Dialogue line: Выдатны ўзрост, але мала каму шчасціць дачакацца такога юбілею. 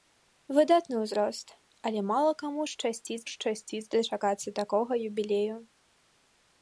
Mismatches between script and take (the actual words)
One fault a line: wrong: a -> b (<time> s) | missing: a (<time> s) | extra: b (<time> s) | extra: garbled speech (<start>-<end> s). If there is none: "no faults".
extra: шчасціць (3.3 s)